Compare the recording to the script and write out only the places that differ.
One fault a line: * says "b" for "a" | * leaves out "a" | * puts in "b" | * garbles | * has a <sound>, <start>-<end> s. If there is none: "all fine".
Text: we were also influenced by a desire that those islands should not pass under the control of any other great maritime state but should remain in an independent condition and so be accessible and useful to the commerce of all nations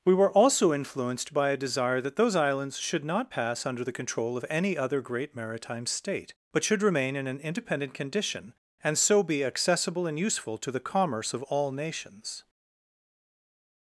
all fine